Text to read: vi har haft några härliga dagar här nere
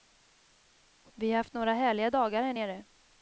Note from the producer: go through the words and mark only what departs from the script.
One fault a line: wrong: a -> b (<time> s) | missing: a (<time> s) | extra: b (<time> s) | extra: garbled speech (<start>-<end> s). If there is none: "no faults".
no faults